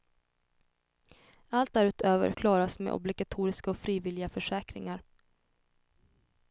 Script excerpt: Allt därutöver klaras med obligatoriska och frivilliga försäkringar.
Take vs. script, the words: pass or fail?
pass